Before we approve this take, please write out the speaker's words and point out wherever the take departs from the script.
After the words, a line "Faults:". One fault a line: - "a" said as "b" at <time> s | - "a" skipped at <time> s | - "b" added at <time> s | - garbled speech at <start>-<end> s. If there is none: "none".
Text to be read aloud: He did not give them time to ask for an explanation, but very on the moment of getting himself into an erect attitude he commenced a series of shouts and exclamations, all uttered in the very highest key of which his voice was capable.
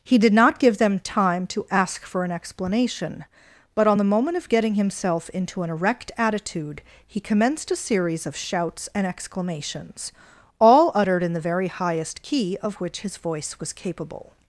He did not give them time to ask for an explanation, but on the moment of getting himself into an erect attitude he commenced a series of shouts and exclamations, all uttered in the very highest key of which his voice was capable.
Faults:
- "very" skipped at 3.9 s